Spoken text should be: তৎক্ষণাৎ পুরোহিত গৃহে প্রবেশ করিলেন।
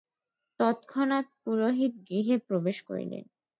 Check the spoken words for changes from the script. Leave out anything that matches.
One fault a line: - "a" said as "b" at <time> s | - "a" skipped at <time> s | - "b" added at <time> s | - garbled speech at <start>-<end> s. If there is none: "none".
none